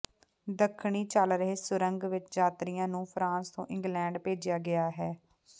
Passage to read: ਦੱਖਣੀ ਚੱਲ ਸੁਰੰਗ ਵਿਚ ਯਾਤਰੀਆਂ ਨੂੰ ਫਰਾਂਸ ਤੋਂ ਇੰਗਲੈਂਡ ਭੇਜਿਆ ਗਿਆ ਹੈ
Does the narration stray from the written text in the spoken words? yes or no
yes